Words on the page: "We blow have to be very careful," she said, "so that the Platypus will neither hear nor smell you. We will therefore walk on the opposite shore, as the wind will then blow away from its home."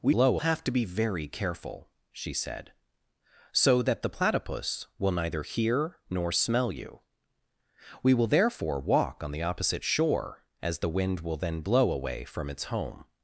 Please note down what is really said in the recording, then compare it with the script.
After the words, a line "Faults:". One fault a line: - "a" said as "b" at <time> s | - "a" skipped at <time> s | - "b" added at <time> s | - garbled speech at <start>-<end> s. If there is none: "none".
"We blow have to be very careful," she said, "so that the Platypus will neither hear nor smell you. We will therefore walk on the opposite shore, as the wind will then blow away from its home."
Faults:
none